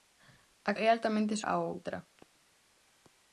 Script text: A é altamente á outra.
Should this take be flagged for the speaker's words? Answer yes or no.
no